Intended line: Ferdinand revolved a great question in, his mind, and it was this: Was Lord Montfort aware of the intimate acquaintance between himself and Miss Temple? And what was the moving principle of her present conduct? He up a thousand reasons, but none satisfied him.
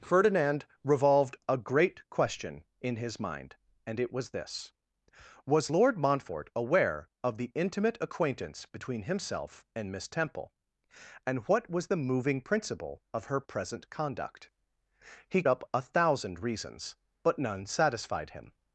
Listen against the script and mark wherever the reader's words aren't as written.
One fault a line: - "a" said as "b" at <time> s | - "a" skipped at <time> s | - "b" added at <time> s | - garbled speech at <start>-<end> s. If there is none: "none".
none